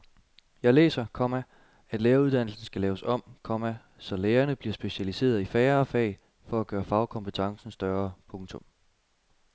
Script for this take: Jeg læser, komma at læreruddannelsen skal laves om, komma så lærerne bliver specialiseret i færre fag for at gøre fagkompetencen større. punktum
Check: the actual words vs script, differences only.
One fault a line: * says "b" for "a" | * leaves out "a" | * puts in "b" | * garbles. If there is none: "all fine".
all fine